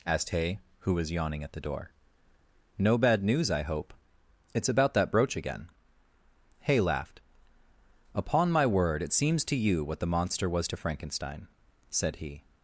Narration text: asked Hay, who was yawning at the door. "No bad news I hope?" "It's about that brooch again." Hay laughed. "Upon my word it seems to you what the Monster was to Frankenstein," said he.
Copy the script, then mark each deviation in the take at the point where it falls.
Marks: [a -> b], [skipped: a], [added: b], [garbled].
asked Hay, who was yawning at the door. "No bad news I hope?" "It's about that brooch again." Hay laughed. "Upon my word it seems to you what the Monster was to Frankenstein," said he.